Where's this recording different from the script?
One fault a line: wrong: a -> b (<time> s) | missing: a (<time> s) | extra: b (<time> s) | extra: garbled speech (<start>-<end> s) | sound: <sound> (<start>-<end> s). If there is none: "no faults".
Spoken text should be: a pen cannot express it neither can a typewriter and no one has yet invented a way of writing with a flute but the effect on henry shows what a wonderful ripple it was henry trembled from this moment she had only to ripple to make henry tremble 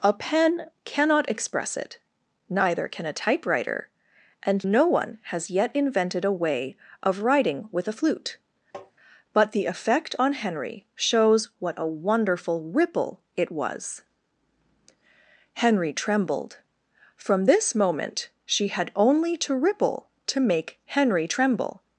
sound: tap (8.7-8.9 s)